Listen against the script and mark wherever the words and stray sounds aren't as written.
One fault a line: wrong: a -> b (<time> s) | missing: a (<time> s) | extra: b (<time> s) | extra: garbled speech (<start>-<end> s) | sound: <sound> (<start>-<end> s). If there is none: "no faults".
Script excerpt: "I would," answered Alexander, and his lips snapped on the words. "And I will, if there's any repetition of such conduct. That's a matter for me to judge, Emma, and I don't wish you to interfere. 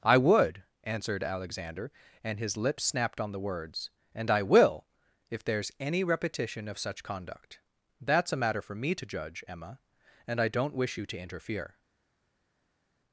no faults